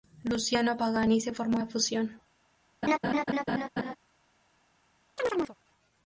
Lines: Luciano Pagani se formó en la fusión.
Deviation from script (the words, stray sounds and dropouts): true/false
true